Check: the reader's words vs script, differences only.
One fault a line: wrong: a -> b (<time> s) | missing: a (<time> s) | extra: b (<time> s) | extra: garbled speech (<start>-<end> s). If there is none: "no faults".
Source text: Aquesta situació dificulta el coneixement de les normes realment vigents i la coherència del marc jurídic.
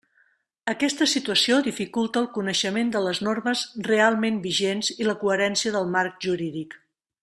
no faults